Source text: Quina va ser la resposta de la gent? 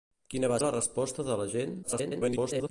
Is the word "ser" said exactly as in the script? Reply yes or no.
no